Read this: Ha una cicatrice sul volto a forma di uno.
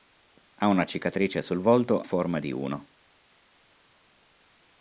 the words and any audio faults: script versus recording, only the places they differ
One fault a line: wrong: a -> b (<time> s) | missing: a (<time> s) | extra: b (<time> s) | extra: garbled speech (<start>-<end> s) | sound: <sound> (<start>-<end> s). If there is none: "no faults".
missing: a (2.0 s)